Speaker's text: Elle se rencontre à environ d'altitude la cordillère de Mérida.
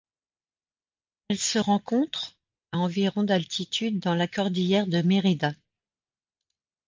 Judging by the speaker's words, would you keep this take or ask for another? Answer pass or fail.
fail